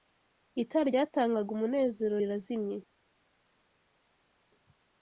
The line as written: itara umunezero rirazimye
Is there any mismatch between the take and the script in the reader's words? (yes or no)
yes